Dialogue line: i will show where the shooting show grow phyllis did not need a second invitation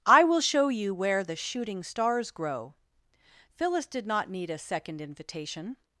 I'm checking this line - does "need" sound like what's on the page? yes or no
yes